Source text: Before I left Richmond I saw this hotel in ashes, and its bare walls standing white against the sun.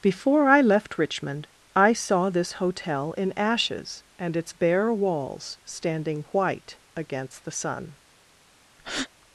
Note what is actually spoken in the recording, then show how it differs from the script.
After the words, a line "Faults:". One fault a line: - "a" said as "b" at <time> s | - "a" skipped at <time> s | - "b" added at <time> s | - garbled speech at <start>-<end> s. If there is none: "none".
Before I left Richmond I saw this hotel in ashes, and its bare walls standing white against the sun.
Faults:
none